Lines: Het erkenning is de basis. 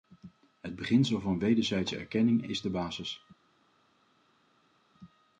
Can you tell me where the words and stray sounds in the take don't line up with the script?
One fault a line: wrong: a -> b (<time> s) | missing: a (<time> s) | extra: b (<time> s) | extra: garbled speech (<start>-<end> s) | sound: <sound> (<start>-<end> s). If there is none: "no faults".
extra: beginsel van wederzijdse (0.8 s)